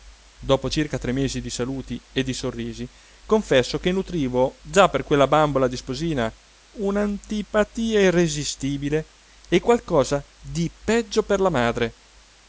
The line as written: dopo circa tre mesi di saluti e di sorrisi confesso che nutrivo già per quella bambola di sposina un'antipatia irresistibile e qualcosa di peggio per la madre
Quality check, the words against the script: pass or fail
pass